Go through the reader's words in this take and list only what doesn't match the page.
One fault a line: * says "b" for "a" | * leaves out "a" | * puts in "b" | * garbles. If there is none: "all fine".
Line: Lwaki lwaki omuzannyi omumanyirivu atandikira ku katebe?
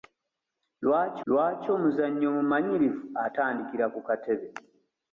all fine